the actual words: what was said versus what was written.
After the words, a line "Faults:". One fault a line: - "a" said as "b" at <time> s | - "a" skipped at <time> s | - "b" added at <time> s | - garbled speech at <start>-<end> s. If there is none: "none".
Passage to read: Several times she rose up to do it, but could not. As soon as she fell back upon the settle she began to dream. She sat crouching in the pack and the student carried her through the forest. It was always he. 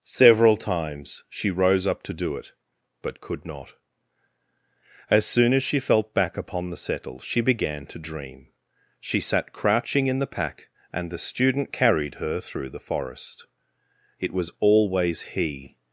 Several times she rose up to do it, but could not. As soon as she felt back upon the settle she began to dream. She sat crouching in the pack and the student carried her through the forest. It was always he.
Faults:
- "fell" said as "felt" at 5.8 s